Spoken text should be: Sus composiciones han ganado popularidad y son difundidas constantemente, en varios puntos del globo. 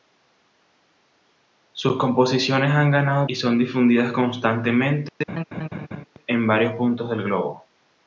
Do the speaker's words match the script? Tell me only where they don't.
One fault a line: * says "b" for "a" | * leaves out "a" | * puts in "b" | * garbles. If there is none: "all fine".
* leaves out "popularidad"